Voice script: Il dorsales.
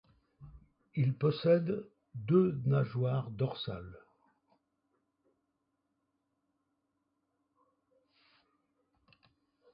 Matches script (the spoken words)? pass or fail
fail